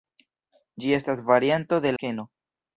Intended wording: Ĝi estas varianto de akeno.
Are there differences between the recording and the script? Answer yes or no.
no